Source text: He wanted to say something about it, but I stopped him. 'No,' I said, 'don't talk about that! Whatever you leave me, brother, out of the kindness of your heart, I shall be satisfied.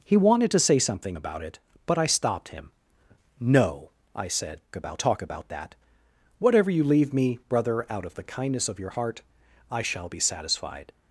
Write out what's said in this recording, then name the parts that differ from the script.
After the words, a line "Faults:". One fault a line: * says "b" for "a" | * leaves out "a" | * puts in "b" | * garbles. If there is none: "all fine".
He wanted to say something about it, but I stopped him. 'No,' I said, 'about talk about that! Whatever you leave me, brother, out of the kindness of your heart, I shall be satisfied.
Faults:
* says "about" for "don't"